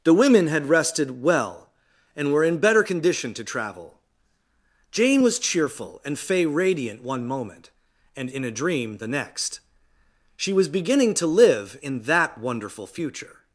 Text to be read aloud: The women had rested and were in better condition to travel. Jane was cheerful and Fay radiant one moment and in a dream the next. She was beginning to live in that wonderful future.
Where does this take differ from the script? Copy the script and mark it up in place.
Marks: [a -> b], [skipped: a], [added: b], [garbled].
The women had rested [added: well] and were in better condition to travel. Jane was cheerful and Fay radiant one moment and in a dream the next. She was beginning to live in that wonderful future.